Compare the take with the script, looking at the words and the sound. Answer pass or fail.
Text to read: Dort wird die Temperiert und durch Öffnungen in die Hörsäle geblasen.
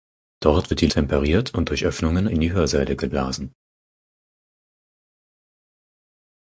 pass